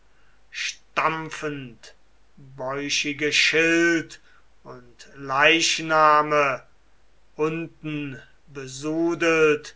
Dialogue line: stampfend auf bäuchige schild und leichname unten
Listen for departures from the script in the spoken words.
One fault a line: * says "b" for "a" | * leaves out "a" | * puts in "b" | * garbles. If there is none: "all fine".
* leaves out "auf"